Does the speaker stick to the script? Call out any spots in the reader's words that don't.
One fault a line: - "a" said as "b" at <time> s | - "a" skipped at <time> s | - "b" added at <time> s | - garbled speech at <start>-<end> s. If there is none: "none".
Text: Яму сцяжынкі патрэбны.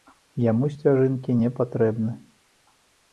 - "не" added at 1.4 s